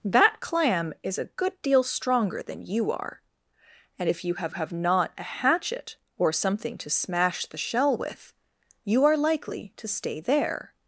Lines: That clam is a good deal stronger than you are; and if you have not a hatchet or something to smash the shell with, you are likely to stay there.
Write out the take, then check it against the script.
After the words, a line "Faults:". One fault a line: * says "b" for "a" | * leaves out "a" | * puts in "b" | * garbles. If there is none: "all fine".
That clam is a good deal stronger than you are; and if you have have not a hatchet or something to smash the shell with, you are likely to stay there.
Faults:
* puts in "have"